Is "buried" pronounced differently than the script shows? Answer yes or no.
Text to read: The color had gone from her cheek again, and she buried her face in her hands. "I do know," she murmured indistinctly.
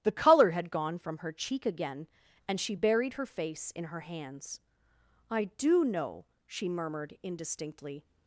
no